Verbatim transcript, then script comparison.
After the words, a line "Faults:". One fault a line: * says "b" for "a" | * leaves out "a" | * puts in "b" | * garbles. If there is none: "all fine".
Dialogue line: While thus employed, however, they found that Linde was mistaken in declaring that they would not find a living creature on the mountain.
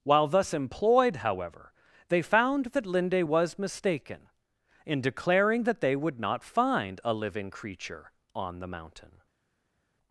While thus employed, however, they found that Linde was mistaken in declaring that they would not find a living creature on the mountain.
Faults:
all fine